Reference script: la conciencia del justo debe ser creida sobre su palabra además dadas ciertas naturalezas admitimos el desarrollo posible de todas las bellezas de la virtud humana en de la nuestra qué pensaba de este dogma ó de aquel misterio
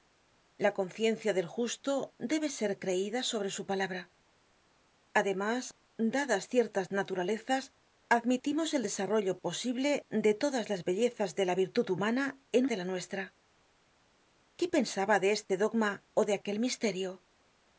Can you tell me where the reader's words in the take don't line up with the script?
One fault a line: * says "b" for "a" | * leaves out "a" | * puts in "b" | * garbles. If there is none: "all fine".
all fine